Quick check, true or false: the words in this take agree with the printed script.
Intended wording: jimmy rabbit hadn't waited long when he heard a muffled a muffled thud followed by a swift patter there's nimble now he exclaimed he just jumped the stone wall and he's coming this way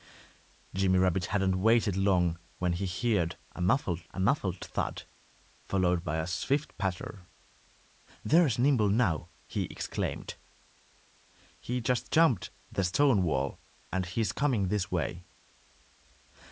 true